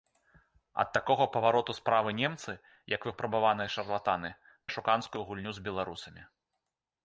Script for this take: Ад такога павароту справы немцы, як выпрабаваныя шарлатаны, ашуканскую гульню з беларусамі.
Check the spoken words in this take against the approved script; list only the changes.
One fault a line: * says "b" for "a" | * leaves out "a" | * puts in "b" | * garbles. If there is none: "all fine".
all fine